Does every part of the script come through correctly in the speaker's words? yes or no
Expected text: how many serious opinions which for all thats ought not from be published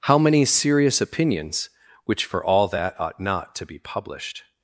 no